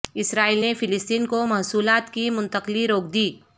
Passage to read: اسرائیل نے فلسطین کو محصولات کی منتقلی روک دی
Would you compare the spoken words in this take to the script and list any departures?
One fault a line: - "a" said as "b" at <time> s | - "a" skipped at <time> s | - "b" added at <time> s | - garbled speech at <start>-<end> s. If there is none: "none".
none